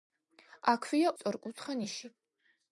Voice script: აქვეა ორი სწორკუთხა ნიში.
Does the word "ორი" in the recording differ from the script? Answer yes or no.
yes